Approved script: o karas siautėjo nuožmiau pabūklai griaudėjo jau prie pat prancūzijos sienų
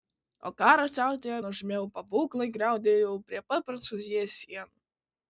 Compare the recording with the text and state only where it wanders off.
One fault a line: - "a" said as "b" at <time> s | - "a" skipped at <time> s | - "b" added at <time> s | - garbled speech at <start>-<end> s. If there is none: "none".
none